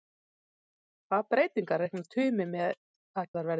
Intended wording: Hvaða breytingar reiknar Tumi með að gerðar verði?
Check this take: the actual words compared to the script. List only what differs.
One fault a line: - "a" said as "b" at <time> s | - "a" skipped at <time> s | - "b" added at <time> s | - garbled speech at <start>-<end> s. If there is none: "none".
- "gerðar" skipped at 3.3 s